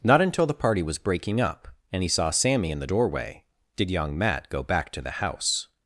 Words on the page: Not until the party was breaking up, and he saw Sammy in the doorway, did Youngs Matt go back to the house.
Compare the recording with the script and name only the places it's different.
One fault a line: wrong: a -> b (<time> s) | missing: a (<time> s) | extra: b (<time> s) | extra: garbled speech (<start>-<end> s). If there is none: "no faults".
wrong: Youngs -> Young (3.9 s)